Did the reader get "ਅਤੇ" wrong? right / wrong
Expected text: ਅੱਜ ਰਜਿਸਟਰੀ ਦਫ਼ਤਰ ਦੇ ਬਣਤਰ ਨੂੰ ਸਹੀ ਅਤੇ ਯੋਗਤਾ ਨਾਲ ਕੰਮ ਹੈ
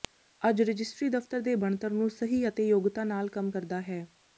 right